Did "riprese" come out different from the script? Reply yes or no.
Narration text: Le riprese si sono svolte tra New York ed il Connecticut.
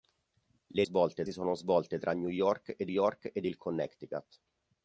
yes